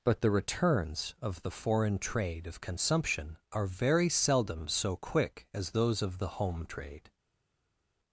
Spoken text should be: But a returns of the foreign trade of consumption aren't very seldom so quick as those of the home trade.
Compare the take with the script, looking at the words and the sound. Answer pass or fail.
fail